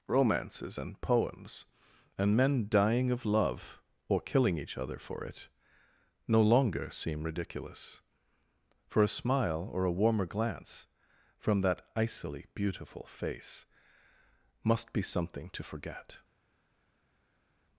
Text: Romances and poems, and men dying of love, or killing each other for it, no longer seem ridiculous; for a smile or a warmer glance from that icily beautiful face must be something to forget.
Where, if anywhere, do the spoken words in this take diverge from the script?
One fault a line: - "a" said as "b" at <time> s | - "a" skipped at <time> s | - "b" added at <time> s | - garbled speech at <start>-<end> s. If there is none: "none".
none